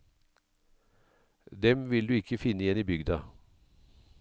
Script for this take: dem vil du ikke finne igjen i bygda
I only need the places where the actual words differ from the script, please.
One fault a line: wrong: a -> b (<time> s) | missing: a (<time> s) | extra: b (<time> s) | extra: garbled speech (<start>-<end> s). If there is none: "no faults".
no faults